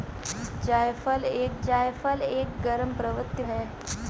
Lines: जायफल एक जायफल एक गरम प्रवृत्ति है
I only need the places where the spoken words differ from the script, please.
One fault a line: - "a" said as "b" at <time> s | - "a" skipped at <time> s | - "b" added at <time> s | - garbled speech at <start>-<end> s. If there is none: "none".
none